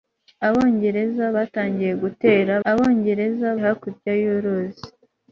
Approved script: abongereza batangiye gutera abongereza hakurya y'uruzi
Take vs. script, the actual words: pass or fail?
pass